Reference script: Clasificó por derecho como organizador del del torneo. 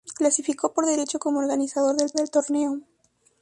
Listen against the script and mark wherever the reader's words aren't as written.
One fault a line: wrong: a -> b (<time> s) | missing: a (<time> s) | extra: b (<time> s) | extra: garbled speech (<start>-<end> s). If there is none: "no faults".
no faults